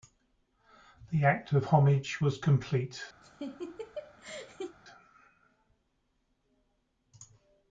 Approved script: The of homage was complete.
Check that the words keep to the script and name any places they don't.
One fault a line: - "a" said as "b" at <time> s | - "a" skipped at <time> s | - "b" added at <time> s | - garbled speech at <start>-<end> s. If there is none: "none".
- "act" added at 1.2 s